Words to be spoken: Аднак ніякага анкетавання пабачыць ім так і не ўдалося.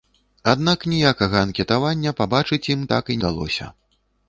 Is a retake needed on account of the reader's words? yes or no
yes